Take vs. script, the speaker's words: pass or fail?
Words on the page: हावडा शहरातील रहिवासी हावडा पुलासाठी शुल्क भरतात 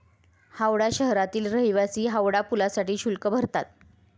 pass